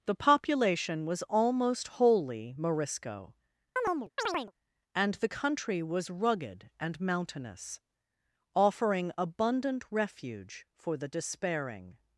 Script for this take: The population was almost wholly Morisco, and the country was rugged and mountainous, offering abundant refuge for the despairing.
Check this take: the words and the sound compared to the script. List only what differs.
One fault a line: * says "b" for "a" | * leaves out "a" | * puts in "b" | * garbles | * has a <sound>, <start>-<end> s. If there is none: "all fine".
* has a chirp, 3.8-4.5 s